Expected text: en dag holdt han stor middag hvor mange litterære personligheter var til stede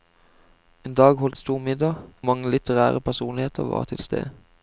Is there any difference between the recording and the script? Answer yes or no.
yes